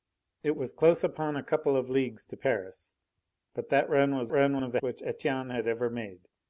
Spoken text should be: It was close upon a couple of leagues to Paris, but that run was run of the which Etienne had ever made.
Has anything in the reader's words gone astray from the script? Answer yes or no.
no